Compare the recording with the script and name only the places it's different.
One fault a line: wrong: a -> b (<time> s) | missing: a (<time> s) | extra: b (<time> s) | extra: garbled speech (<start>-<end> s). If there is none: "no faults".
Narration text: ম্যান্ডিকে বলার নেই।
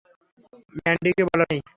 no faults